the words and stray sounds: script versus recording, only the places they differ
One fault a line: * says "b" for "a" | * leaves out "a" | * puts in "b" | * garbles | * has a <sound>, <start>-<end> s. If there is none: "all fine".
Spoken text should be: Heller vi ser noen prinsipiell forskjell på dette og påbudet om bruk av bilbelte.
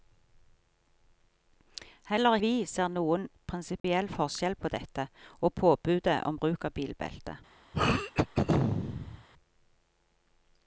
* has a dropout, 3.8-3.8 s
* has a throat clearing, 7.7-9.3 s